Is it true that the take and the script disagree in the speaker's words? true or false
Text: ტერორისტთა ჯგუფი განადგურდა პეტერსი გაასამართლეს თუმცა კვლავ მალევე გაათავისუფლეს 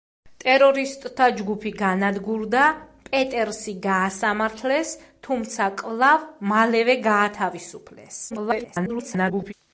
true